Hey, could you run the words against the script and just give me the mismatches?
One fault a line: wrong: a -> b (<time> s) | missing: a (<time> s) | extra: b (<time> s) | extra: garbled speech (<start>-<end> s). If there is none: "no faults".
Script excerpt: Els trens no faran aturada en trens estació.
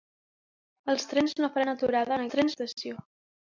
no faults